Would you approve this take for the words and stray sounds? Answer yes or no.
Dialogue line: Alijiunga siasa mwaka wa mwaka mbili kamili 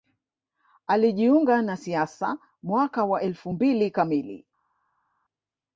no